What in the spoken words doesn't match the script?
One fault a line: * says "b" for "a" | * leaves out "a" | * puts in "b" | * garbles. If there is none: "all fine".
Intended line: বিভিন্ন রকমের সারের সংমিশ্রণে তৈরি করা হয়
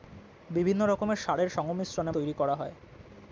all fine